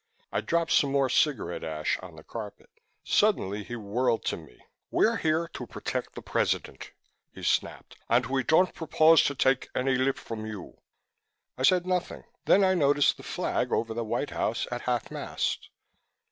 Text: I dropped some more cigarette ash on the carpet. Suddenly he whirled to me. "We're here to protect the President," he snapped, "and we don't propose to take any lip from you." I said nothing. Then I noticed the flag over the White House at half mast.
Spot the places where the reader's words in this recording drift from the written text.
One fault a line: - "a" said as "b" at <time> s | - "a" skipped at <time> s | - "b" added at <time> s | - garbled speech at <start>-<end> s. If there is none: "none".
none